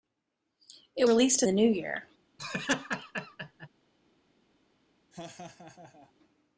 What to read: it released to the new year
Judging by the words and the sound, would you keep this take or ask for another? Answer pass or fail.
fail